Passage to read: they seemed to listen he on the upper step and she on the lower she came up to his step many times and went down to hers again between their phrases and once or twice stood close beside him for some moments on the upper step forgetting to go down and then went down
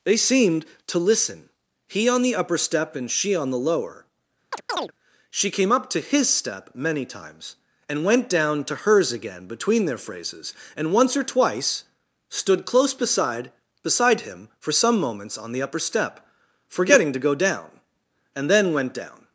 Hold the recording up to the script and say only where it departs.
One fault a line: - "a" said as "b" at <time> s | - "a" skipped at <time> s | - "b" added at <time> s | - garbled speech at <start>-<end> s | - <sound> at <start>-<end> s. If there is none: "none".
- chirp at 4.5-4.9 s
- "beside" added at 13.8 s